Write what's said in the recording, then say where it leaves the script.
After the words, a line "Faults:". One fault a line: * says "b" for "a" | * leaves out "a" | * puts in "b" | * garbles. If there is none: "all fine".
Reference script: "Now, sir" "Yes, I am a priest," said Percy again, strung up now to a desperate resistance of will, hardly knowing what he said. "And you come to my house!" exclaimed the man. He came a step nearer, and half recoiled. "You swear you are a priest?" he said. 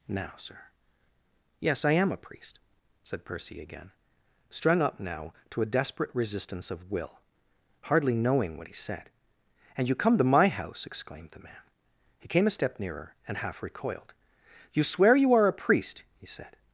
"Now, sir" "Yes, I am a priest," said Percy again, strung up now to a desperate resistance of will, hardly knowing what he said. "And you come to my house!" exclaimed the man. He came a step nearer, and half recoiled. "You swear you are a priest?" he said.
Faults:
all fine